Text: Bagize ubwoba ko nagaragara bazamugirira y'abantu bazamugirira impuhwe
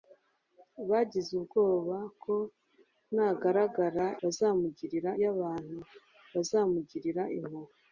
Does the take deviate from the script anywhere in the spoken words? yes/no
no